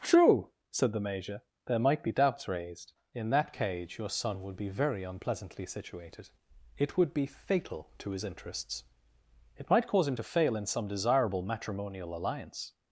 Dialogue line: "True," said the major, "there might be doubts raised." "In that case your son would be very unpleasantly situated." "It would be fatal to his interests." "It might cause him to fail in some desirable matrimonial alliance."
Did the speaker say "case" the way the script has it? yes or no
no